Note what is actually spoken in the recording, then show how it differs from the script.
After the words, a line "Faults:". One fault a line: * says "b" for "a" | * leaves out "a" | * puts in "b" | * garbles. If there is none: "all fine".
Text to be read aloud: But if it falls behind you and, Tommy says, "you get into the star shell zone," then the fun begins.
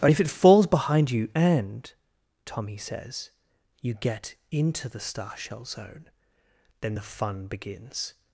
But if it falls behind you and, Tommy says, "you get into the star shell zone," then the fun begins.
Faults:
all fine